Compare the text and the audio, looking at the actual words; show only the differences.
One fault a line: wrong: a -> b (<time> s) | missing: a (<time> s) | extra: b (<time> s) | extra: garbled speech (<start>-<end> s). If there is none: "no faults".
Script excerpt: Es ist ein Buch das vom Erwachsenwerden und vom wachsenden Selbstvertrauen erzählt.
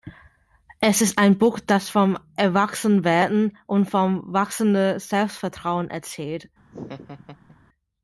no faults